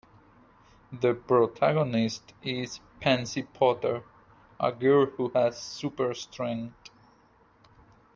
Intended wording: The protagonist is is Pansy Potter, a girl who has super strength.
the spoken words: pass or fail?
fail